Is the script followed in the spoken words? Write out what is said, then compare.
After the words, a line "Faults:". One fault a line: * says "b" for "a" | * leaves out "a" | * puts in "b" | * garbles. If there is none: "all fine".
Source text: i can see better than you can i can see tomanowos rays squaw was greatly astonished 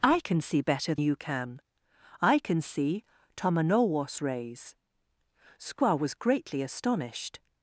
i can see better you can i can see tomanowos rays squaw was greatly astonished
Faults:
* leaves out "than"